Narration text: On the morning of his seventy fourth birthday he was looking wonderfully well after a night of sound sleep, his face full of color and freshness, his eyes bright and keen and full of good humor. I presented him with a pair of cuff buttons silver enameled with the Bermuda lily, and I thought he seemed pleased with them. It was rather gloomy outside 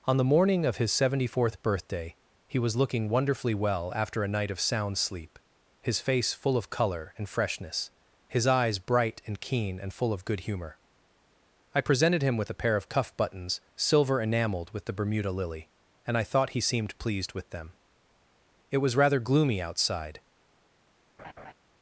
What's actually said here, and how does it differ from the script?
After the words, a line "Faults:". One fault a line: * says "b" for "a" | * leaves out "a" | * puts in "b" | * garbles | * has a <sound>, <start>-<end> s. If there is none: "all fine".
On the morning of his seventy fourth birthday he was looking wonderfully well after a night of sound sleep, his face full of color and freshness, his eyes bright and keen and full of good humor. I presented him with a pair of cuff buttons silver enameled with the Bermuda lily, and I thought he seemed pleased with them. It was rather gloomy outside
Faults:
* has a laugh, 21.2-21.5 s